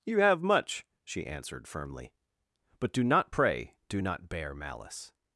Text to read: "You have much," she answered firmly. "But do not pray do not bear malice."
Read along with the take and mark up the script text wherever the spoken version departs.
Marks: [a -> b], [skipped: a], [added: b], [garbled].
"You have much," she answered firmly. "But do not pray do not bear malice."